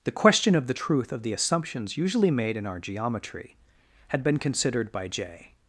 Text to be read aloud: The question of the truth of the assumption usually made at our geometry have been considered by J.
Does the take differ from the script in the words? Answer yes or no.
yes